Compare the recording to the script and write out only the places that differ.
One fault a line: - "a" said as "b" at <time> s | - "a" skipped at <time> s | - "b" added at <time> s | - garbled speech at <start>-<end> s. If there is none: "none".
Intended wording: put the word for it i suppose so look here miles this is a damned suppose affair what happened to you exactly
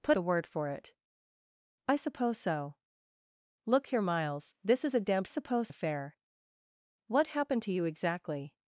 none